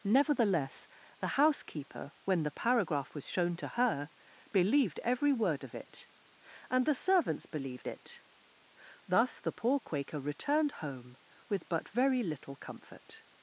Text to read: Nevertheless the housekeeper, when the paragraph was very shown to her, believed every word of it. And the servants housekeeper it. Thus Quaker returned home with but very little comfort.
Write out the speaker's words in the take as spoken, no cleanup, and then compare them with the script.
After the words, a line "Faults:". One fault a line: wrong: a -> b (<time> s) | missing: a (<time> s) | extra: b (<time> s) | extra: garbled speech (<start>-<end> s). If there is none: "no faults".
Nevertheless the housekeeper, when the paragraph was shown to her, believed every word of it. And the servants believed it. Thus the poor Quaker returned home with but very little comfort.
Faults:
missing: very (3.3 s)
wrong: housekeeper -> believed (7.5 s)
extra: the poor (9.4 s)